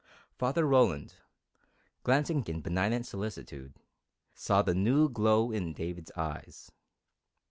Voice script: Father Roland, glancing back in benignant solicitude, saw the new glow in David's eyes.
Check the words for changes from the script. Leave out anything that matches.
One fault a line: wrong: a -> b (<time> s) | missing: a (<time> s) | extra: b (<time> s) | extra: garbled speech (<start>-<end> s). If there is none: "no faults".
missing: back (2.4 s)